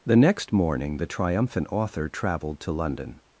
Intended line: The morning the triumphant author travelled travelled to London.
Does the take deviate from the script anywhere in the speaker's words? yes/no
yes